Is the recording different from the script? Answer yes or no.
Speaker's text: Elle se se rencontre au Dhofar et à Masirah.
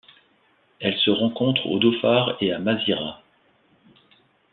yes